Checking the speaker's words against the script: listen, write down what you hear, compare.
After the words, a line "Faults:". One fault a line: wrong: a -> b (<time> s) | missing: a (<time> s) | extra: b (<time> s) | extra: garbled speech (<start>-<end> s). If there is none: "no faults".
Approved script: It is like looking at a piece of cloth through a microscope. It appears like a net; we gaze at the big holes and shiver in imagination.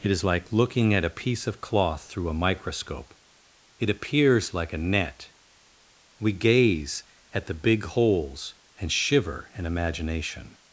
It is like looking at a piece of cloth through a microscope. It appears like a net; we gaze at the big holes and shiver in imagination.
Faults:
no faults